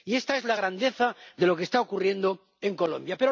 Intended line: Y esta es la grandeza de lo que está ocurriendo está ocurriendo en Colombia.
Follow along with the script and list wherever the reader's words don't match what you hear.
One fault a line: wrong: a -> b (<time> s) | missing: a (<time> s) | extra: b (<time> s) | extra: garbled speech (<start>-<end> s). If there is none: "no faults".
missing: está ocurriendo (2.4 s)